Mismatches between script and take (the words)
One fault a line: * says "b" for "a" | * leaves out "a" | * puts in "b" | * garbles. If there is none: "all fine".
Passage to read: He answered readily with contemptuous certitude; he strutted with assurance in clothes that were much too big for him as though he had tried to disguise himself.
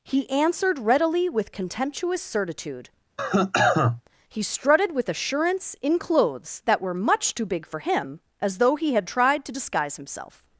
all fine